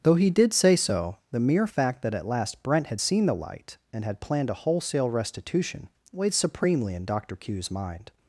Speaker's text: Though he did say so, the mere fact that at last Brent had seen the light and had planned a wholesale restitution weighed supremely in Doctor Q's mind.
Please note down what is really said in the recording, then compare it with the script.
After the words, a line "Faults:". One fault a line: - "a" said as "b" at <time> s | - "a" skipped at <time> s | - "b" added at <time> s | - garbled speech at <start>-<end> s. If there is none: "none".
Though he did say so, the mere fact that at last Brent had seen the light and had planned a wholesale restitution weighed supremely in Doctor Q's mind.
Faults:
none